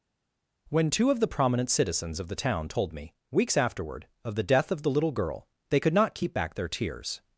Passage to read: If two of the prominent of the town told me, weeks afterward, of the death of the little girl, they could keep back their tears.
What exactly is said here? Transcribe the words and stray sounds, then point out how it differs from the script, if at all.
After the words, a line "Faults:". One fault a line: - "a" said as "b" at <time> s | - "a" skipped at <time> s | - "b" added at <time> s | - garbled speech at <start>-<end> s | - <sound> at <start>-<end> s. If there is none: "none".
When two of the prominent citizens of the town told me, weeks afterward, of the death of the little girl, they could not keep back their tears.
Faults:
- "If" said as "When" at 0.7 s
- "citizens" added at 1.7 s
- "not" added at 5.9 s